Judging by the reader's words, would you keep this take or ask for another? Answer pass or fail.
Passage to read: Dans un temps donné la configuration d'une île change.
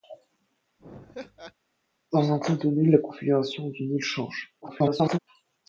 fail